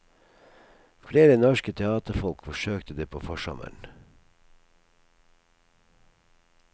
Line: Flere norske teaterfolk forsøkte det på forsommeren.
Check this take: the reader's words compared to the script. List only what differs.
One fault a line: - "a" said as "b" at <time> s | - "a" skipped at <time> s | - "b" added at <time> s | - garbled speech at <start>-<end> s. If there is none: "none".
none